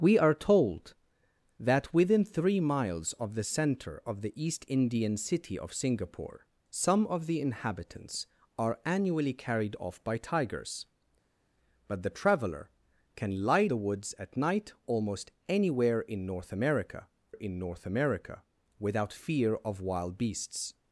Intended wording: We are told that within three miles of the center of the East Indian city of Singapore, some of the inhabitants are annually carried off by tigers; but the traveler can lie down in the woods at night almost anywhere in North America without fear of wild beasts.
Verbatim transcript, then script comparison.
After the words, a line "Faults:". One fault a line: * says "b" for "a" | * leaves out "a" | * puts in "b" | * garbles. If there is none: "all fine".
We are told that within three miles of the center of the East Indian city of Singapore, some of the inhabitants are annually carried off by tigers; but the traveler can lie the woods at night almost anywhere in North America in North America without fear of wild beasts.
Faults:
* leaves out "down in"
* puts in "in North America"